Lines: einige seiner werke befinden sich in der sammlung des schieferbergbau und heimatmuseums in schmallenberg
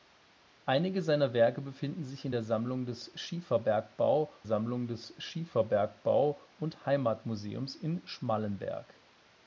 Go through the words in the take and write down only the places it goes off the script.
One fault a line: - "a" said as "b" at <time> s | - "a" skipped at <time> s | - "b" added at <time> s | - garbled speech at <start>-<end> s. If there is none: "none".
- "sammlung des schieferbergbau" added at 4.4 s